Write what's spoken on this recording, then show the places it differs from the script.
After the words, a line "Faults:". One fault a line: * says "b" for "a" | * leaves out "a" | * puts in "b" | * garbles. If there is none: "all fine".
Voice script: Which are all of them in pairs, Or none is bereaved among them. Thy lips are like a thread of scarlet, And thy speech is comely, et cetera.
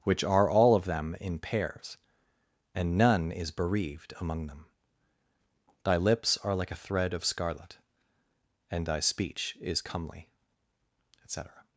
Which are all of them in pairs, And none is bereaved among them. Thy lips are like a thread of scarlet, And thy speech is comely, et cetera.
Faults:
* says "And" for "Or"